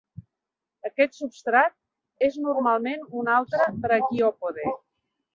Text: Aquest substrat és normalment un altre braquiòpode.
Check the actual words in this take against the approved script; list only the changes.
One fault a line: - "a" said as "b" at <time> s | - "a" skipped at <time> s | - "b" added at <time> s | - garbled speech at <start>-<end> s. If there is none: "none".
none